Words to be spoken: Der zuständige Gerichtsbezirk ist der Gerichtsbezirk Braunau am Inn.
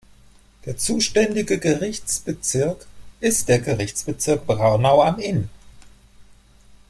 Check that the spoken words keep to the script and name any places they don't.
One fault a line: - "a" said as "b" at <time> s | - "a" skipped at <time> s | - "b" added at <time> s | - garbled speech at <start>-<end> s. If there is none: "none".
none